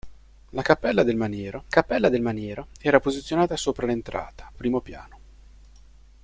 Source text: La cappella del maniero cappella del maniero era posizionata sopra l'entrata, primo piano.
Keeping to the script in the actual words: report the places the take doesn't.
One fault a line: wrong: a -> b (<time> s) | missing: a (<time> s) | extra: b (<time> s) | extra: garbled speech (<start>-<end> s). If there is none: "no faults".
no faults